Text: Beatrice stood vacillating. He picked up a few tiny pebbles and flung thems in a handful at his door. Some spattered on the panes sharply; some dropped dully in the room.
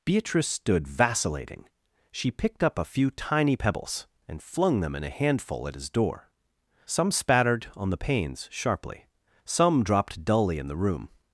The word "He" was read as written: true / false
false